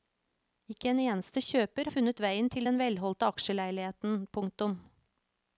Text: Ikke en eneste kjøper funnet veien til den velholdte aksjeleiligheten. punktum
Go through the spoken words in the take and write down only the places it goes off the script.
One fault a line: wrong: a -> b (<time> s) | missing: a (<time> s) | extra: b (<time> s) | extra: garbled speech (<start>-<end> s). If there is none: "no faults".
no faults